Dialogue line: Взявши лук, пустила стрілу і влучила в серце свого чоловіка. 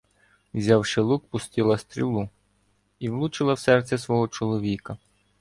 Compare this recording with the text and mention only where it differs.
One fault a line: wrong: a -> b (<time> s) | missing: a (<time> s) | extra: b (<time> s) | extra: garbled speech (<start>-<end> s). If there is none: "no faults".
no faults